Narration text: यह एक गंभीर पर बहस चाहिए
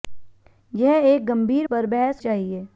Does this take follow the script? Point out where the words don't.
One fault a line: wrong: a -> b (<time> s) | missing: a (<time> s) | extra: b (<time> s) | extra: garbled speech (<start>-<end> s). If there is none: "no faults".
no faults